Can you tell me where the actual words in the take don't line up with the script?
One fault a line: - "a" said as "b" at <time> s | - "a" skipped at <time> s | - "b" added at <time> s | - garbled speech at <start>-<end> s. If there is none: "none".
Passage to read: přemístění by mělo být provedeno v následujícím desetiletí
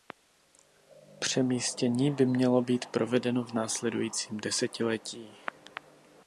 none